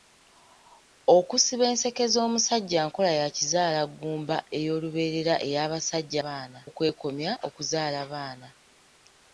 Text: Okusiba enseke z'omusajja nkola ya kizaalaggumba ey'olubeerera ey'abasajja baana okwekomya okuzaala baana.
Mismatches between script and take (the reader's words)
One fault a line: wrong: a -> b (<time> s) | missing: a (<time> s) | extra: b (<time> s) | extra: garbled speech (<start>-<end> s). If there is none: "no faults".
no faults